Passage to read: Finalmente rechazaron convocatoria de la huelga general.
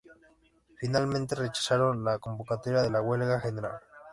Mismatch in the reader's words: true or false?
true